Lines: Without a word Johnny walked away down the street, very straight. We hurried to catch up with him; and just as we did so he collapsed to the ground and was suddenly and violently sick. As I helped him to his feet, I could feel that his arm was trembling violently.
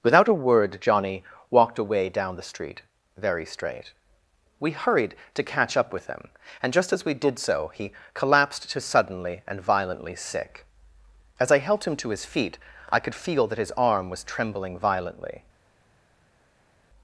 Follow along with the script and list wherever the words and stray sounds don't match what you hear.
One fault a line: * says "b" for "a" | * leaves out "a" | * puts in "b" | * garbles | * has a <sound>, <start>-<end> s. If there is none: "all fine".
* leaves out "the ground and was"